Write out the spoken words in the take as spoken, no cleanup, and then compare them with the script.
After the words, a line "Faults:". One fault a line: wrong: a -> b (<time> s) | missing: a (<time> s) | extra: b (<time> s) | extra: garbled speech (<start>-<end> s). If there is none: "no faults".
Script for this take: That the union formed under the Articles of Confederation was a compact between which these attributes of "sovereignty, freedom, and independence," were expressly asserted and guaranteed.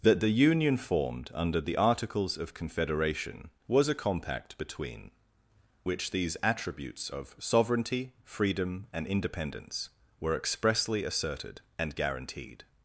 That the union formed under the Articles of Confederation was a compact between which these attributes of "sovereignty, freedom, and independence," were expressly asserted and guaranteed.
Faults:
no faults